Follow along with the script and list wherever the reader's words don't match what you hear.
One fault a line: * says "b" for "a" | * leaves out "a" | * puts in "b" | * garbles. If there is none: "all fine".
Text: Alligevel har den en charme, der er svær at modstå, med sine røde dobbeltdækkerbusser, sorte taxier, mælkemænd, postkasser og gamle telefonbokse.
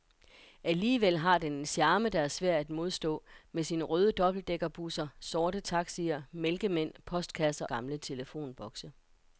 * leaves out "og"